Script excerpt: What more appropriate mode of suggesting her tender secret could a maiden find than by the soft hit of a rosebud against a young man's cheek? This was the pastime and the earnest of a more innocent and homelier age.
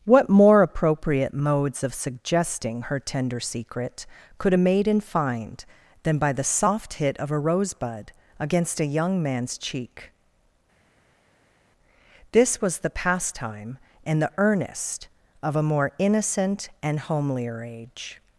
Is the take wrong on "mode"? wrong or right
wrong